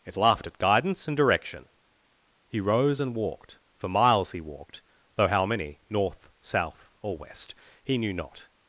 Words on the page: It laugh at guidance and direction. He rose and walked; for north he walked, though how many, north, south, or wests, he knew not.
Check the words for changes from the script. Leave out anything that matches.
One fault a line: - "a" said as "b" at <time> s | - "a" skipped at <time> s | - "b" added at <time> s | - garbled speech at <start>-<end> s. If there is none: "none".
- "laugh" said as "laughed" at 0.2 s
- "north" said as "miles" at 3.9 s
- "wests" said as "west" at 7.2 s